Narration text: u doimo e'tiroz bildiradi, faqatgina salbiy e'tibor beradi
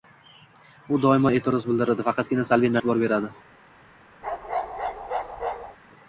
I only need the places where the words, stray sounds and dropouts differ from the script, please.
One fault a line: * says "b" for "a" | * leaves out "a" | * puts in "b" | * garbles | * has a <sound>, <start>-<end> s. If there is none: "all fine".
* has a bark, 4.2-5.8 s